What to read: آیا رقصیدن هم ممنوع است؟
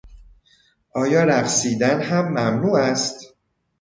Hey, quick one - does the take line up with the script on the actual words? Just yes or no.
yes